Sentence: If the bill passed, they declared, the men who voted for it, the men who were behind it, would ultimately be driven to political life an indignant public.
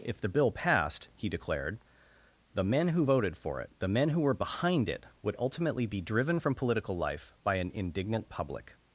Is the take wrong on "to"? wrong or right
wrong